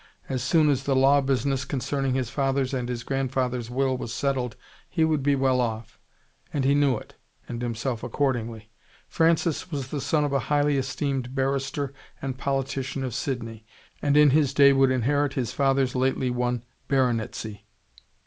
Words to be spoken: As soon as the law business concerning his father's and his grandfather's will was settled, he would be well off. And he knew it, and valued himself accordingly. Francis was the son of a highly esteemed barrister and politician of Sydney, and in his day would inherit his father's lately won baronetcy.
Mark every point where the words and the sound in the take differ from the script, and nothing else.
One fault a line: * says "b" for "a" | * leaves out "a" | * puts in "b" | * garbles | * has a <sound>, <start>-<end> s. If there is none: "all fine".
* leaves out "valued"